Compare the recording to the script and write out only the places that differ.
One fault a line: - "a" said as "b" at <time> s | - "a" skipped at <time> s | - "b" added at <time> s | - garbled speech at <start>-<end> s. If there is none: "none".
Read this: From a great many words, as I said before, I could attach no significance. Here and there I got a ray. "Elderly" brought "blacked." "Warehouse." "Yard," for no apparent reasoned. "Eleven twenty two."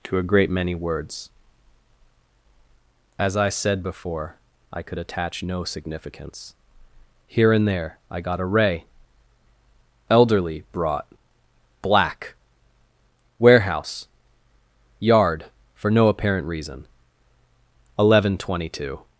- "From" said as "To" at 0.1 s
- "blacked" said as "black" at 11.8 s
- "reasoned" said as "reason" at 16.5 s